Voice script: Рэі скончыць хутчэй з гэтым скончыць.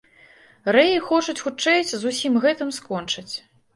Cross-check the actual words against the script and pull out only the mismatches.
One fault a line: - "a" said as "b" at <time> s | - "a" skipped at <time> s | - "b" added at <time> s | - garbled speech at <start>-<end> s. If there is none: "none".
- "скончыць" said as "хочуць" at 1.1 s
- "усім" added at 2.1 s